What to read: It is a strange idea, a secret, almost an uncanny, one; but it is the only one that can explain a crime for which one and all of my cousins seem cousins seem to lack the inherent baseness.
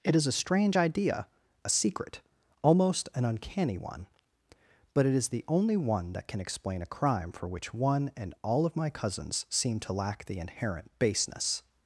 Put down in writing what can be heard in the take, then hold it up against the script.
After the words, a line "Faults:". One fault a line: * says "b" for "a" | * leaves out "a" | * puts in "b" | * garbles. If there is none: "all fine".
It is a strange idea, a secret, almost an uncanny, one; but it is the only one that can explain a crime for which one and all of my cousins seem to lack the inherent baseness.
Faults:
* leaves out "cousins seem"